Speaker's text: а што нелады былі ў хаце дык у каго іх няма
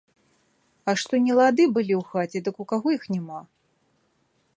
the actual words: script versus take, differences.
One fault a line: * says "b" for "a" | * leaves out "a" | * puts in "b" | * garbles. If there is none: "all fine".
all fine